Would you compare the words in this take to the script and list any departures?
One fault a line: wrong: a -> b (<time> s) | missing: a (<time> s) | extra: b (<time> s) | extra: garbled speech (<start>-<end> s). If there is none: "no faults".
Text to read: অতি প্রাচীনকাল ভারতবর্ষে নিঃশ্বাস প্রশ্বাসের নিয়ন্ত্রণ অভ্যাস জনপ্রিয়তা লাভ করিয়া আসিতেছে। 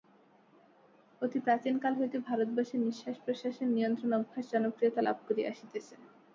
extra: হইতে (2.0 s)